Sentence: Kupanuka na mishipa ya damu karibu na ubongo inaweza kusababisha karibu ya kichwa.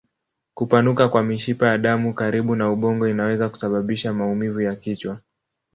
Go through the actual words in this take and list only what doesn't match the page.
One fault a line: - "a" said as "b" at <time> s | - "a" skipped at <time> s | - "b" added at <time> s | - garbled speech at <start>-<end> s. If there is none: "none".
- "na" said as "kwa" at 1.1 s
- "karibu" said as "maumivu" at 4.1 s